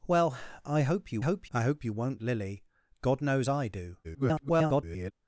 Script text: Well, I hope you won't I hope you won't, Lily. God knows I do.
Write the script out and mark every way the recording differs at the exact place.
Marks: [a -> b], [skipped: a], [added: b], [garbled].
Well, I hope you [won't -> hope] I hope you won't, Lily. God knows I do. [garbled]